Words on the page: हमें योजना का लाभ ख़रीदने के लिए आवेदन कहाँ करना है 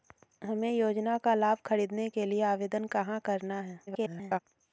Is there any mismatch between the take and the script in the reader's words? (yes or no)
yes